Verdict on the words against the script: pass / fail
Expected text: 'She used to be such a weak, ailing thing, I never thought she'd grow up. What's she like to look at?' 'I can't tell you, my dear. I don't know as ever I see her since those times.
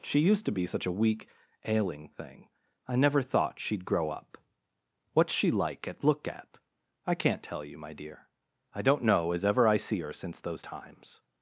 fail